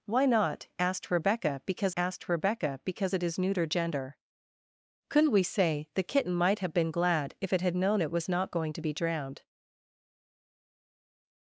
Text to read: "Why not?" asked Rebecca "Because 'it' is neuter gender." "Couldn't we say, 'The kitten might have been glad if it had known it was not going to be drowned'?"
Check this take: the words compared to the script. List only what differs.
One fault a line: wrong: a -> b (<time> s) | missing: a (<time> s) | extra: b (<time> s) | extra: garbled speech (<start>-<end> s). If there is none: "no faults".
extra: asked Rebecca Because (2.0 s)